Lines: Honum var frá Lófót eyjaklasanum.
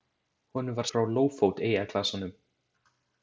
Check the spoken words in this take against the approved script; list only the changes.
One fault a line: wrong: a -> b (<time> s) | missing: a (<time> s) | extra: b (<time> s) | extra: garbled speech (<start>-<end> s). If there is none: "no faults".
no faults